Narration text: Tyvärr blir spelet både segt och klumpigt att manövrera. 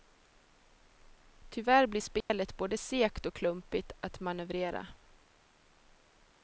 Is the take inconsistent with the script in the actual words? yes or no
no